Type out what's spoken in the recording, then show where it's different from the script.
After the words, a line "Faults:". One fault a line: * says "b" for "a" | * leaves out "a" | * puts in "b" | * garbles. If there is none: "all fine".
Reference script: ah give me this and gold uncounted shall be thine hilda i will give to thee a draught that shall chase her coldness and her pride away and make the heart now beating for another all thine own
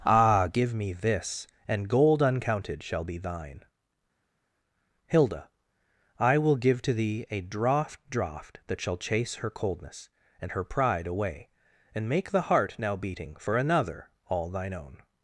ah give me this and gold uncounted shall be thine hilda i will give to thee a draught draught that shall chase her coldness and her pride away and make the heart now beating for another all thine own
Faults:
* puts in "draught"